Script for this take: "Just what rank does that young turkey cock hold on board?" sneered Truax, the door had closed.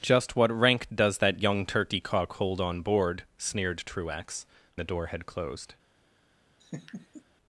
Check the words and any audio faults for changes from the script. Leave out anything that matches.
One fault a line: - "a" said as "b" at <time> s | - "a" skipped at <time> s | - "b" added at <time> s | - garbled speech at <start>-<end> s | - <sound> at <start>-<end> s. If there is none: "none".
- laugh at 6.6-7.2 s